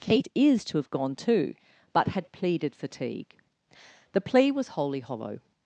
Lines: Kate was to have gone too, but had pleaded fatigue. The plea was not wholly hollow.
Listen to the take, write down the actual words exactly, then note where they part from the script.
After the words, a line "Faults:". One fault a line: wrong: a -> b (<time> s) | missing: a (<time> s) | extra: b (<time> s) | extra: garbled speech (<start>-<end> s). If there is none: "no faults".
Kate is to have gone too, but had pleaded fatigue. The plea was wholly hollow.
Faults:
wrong: was -> is (0.3 s)
missing: not (4.7 s)